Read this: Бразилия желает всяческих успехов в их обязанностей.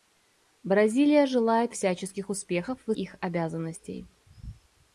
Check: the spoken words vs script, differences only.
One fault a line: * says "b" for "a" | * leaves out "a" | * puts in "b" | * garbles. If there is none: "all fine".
all fine